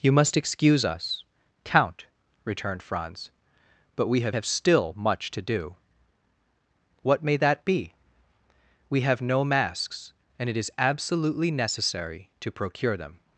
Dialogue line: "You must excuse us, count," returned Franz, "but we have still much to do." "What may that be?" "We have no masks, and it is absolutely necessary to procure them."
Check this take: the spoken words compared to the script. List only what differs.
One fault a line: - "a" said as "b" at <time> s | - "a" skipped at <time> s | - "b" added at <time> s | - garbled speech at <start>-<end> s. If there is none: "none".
- "have" added at 4.3 s